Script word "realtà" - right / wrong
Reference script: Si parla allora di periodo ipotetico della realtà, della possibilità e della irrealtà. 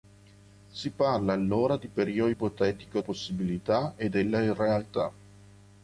wrong